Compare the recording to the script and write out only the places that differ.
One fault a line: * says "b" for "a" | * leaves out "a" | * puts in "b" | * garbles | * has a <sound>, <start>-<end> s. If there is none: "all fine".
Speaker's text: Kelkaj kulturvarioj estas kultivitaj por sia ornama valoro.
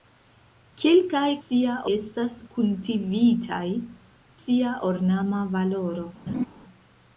* says "sia" for "kulturvarioj"
* leaves out "por"
* has a laugh, 6.3-6.5 s